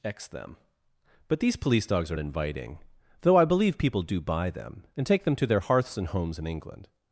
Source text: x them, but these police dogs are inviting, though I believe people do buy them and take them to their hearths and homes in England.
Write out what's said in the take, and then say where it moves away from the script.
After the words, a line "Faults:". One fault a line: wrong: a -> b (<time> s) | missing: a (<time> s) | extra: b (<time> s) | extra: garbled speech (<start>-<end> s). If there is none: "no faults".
x them, but these police dogs are inviting, though I believe people do buy them and take them to their hearths and homes in England.
Faults:
no faults